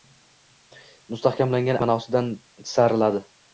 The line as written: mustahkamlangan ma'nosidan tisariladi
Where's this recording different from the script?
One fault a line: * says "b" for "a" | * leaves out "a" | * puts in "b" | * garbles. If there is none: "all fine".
all fine